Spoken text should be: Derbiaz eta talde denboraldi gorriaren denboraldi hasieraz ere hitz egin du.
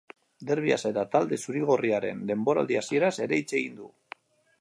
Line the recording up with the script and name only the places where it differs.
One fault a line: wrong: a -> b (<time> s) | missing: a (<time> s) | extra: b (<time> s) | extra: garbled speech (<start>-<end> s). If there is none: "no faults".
wrong: denboraldi -> zuri (1.4 s)